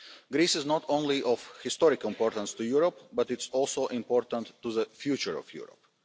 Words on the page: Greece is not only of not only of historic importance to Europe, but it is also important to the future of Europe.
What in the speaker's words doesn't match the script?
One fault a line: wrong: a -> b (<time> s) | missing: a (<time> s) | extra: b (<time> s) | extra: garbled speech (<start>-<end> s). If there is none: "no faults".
missing: not only of (1.5 s)